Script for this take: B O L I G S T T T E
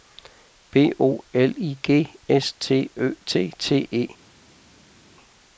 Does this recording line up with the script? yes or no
no